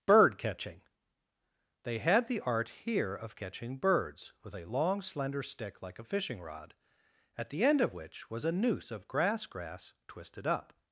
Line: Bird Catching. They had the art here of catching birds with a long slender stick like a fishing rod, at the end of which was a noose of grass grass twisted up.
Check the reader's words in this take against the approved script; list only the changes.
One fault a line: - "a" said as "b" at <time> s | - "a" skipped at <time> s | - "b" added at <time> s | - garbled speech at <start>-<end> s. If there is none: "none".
none